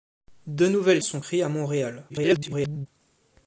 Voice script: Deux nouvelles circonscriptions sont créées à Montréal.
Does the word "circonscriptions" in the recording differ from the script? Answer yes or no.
yes